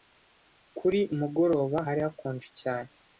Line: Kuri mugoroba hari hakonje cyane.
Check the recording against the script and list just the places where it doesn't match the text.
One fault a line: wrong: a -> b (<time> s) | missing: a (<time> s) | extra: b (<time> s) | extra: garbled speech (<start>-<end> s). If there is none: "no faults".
no faults